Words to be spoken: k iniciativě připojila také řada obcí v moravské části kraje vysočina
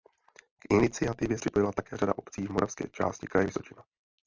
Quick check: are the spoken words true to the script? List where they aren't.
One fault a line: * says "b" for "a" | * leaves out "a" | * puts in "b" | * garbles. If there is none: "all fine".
all fine